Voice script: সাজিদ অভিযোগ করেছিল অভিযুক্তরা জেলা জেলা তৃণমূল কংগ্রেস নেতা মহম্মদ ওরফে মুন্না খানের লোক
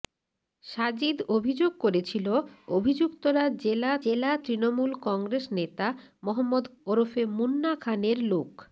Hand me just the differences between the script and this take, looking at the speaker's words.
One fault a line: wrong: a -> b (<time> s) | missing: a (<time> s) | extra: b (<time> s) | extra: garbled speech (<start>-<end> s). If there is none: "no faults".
no faults